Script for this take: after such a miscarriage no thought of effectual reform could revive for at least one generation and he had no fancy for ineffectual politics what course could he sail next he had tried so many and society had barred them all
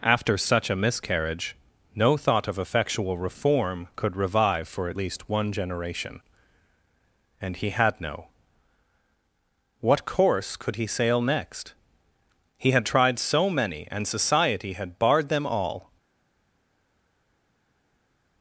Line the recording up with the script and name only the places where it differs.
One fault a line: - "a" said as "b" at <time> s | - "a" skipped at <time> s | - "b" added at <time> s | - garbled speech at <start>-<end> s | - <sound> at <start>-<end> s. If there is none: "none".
- "fancy for ineffectual politics" skipped at 8.3 s